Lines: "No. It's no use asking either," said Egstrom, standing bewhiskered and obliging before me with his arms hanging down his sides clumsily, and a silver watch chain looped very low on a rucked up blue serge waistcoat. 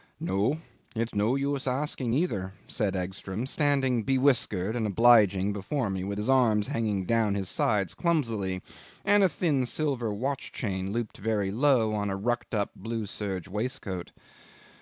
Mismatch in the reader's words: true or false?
true